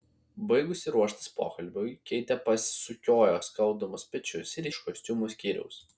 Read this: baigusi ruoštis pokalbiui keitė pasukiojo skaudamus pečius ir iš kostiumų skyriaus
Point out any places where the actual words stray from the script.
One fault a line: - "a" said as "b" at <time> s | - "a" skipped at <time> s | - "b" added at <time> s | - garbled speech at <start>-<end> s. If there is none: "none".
none